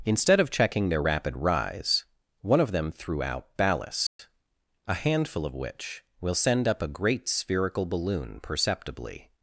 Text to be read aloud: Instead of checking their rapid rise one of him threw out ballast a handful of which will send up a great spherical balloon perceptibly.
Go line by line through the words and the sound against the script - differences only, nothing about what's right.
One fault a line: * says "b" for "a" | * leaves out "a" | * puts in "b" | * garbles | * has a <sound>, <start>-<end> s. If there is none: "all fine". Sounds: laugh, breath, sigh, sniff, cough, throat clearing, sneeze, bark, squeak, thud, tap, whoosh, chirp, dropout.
* says "them" for "him"
* has a dropout, 4.1-4.2 s